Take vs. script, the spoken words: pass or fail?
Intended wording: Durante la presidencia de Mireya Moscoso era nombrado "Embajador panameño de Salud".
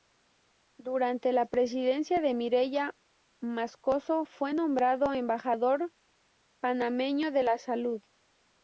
fail